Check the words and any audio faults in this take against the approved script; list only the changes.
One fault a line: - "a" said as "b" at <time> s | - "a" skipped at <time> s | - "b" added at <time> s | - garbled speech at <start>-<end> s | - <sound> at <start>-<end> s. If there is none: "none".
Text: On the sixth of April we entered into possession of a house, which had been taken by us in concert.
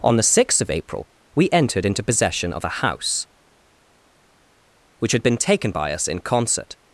none